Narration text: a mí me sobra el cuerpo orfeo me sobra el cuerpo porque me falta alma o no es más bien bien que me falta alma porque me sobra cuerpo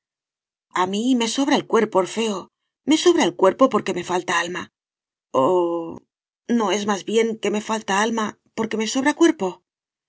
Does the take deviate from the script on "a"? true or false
false